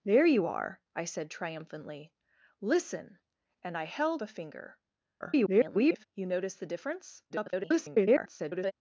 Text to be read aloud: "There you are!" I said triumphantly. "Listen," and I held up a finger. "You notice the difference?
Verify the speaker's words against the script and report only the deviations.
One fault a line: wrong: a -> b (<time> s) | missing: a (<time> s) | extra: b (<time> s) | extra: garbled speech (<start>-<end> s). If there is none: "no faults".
missing: up (4.2 s)
extra: garbled speech (5.2-6.1 s)
extra: garbled speech (7.3-8.7 s)